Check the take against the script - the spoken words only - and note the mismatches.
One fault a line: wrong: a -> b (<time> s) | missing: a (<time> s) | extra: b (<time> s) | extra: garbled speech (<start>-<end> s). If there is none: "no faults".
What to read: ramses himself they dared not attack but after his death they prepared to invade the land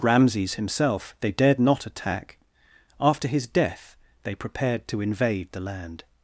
missing: but (2.4 s)